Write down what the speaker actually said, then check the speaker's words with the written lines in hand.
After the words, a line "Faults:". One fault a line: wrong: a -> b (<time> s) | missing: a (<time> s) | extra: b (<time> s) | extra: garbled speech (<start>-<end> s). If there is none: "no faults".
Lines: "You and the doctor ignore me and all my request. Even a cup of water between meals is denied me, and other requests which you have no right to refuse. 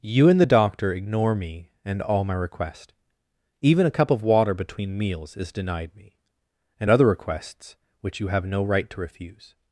"You and the doctor ignore me and all my request. Even a cup of water between meals is denied me, and other requests which you have no right to refuse.
Faults:
no faults